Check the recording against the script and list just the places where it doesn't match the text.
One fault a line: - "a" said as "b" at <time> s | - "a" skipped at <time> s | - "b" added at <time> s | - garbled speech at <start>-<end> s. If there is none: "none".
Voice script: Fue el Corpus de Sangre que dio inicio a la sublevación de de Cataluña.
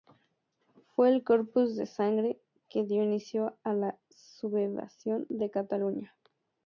- "de" skipped at 5.5 s